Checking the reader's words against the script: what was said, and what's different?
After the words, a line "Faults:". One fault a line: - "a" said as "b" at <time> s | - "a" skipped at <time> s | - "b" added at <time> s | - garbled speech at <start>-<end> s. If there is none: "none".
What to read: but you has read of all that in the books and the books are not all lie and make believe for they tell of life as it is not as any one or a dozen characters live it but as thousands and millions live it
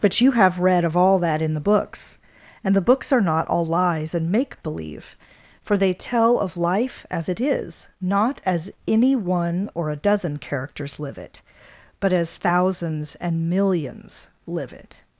but you have read of all that in the books and the books are not all lies and make believe for they tell of life as it is not as any one or a dozen characters live it but as thousands and millions live it
Faults:
- "has" said as "have" at 0.3 s
- "lie" said as "lies" at 3.7 s